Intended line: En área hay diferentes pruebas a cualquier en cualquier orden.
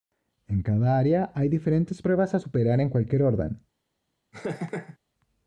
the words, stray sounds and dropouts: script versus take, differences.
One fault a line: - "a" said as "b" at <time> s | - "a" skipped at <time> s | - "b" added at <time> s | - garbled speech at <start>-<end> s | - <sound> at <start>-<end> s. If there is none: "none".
- "cada" added at 0.6 s
- "cualquier" said as "superar" at 2.4 s
- laugh at 4.3-5.0 s